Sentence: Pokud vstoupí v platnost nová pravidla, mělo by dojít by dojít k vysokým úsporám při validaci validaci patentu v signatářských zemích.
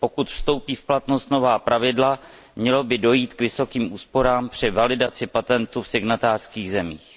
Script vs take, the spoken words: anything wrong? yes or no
yes